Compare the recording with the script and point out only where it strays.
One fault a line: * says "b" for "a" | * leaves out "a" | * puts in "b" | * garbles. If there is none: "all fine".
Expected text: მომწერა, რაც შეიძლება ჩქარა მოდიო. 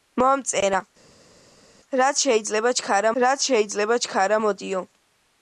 * puts in "რაც შეიძლება ჩქარა"